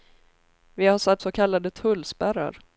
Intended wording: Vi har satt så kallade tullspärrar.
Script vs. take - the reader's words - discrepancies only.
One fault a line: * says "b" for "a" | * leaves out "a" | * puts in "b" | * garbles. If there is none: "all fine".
all fine